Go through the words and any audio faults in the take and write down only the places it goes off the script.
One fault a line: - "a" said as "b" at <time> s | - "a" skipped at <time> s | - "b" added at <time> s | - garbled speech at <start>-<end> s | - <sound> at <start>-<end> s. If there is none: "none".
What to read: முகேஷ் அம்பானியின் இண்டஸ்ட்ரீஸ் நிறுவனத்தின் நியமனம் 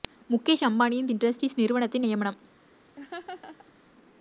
- laugh at 3.0-3.7 s